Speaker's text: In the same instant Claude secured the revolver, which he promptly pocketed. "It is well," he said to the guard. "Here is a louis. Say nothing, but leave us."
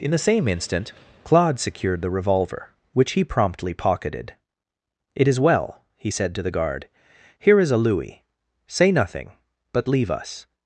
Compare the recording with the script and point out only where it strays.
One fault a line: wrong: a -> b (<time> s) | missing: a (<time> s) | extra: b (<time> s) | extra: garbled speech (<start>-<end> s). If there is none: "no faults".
no faults